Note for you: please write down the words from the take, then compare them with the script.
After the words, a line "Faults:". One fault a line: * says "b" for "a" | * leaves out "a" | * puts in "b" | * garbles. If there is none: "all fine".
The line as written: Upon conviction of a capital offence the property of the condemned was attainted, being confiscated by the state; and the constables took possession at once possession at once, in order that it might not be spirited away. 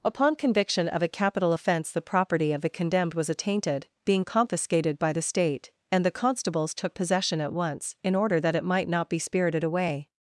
Upon conviction of a capital offence the property of the condemned was attainted, being confiscated by the state; and the constables took possession at once, in order that it might not be spirited away.
Faults:
* leaves out "possession at once"